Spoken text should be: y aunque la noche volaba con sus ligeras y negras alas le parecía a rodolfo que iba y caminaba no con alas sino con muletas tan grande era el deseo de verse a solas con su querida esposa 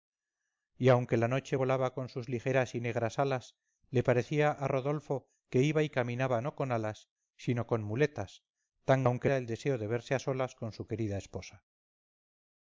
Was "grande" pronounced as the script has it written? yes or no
no